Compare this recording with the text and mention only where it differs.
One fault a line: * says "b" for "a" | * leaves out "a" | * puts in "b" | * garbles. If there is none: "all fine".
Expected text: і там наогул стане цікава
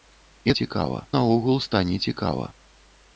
* says "цікава" for "там"